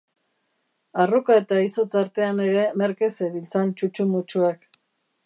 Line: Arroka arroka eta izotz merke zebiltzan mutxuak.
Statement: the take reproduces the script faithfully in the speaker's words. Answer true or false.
false